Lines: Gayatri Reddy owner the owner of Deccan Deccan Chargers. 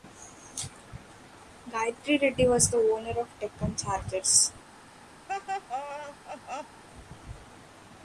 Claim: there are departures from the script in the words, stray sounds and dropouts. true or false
true